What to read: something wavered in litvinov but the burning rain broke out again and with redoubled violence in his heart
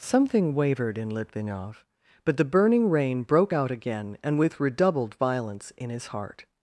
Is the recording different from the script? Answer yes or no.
no